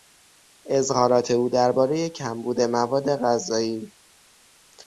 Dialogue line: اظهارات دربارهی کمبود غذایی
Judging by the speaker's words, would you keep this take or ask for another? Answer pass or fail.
fail